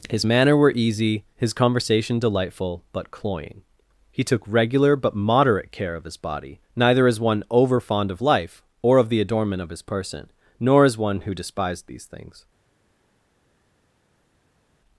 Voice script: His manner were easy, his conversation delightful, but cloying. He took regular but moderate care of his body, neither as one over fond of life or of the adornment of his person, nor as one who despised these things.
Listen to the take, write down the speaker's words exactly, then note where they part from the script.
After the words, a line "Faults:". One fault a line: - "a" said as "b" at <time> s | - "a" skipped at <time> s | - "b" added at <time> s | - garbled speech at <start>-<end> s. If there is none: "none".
His manner were easy, his conversation delightful, but cloying. He took regular but moderate care of his body, neither as one over fond of life or of the adornment of his person, nor as one who despised these things.
Faults:
none